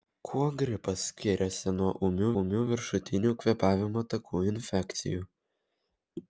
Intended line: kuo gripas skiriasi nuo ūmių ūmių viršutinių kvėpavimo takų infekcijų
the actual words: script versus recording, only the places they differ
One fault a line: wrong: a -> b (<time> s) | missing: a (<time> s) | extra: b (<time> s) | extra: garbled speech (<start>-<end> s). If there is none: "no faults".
no faults